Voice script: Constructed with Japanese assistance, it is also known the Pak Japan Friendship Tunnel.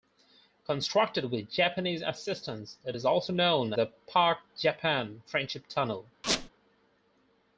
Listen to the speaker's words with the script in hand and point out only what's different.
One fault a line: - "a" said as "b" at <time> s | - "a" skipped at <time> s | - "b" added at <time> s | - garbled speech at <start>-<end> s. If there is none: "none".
none